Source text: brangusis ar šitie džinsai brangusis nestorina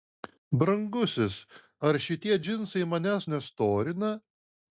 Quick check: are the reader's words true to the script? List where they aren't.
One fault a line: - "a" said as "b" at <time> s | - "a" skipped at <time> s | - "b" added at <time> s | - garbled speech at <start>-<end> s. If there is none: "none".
- "brangusis" said as "manęs" at 2.9 s